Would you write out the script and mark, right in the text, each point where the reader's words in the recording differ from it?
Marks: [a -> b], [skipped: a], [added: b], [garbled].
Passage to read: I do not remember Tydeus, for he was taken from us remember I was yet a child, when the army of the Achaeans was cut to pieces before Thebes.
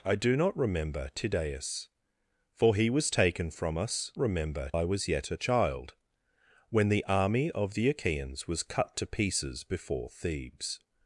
I do not remember Tydeus, for he was taken from us remember I was yet a child, when the army of the Achaeans was cut to pieces before Thebes.